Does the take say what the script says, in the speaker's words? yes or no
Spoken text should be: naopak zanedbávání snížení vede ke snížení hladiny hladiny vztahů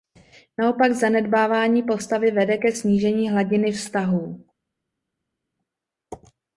no